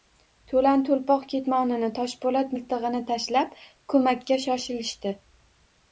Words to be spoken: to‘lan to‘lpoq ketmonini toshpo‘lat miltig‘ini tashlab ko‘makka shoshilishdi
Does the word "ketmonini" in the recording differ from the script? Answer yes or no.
no